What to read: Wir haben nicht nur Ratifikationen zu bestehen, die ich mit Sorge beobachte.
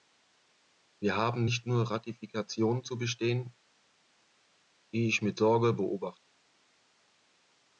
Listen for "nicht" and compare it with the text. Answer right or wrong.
right